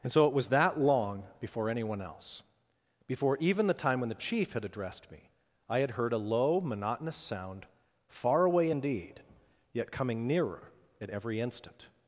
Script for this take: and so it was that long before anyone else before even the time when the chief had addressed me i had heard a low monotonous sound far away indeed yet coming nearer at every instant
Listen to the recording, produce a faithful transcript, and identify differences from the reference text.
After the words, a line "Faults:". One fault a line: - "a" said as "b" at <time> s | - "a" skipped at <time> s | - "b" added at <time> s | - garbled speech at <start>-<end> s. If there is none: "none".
and so it was that long before anyone else before even the time when the chief had addressed me i had heard a low monotonous sound far away indeed yet coming nearer at every instant
Faults:
none